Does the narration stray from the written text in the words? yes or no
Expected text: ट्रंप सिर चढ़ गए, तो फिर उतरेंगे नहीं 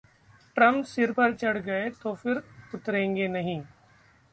yes